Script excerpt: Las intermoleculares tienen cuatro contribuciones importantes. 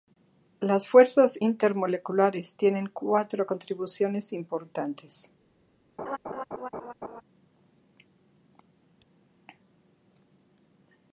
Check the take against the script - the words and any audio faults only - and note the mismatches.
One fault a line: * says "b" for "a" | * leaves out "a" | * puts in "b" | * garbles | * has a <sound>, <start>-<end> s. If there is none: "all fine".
* puts in "fuerzas"
* has a laugh, 6.0-7.2 s